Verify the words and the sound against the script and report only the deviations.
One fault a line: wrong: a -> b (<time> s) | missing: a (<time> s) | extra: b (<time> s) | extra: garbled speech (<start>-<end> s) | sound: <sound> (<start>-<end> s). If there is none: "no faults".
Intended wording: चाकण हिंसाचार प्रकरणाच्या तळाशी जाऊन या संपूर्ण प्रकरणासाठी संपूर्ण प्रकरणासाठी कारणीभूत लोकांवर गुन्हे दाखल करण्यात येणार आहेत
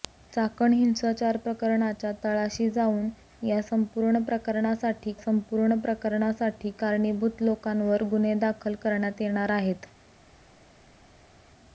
no faults